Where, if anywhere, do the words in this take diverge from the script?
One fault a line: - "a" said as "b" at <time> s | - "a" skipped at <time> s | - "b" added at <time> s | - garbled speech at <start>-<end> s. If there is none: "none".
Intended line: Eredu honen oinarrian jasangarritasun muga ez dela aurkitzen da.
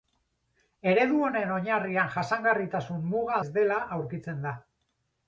none